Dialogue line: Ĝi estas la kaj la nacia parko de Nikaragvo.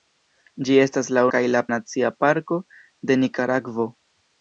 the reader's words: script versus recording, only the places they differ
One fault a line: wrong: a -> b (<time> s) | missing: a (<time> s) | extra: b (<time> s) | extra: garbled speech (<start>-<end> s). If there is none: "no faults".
no faults